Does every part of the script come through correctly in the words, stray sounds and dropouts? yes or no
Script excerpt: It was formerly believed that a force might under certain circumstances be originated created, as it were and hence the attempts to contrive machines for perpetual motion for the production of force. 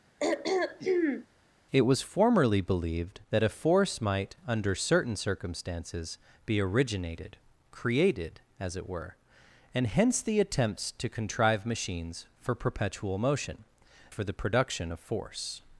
no